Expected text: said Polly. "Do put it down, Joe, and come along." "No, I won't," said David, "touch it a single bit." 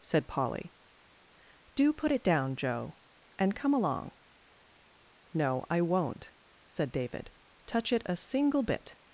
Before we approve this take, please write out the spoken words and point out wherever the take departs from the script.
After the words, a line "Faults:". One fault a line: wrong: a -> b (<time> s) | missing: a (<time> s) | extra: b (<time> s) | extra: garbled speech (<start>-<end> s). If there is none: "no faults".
said Polly. "Do put it down, Joe, and come along." "No, I won't," said David, "touch it a single bit."
Faults:
no faults